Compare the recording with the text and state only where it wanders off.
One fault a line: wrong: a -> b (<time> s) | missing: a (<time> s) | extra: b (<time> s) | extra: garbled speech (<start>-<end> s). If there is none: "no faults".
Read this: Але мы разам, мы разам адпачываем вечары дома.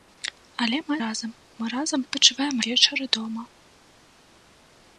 no faults